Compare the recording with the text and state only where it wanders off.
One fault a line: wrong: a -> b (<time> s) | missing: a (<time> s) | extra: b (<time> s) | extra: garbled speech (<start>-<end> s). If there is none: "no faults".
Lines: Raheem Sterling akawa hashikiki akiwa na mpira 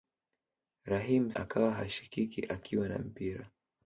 missing: Sterling (1.3 s)